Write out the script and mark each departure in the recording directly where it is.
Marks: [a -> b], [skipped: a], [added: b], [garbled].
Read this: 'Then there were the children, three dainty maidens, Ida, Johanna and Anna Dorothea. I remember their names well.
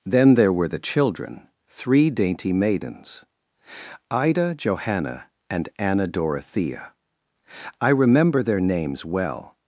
'Then there were the children, three dainty maidens, Ida, Johanna and Anna Dorothea. I remember their names well.